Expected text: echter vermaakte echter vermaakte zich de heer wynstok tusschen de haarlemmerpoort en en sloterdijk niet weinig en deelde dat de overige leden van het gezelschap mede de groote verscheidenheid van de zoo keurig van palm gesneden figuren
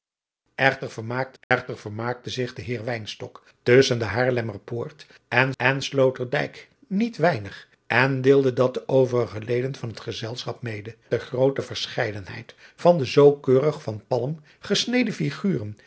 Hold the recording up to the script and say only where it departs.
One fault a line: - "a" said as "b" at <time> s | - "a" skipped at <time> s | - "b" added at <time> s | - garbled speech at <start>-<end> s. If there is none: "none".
none